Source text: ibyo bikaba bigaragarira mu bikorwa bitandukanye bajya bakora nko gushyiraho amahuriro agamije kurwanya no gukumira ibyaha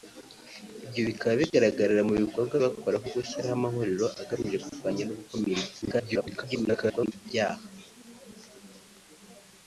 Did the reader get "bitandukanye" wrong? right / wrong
wrong